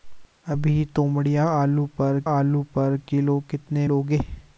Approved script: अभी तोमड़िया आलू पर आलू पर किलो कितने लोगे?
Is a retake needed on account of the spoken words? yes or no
no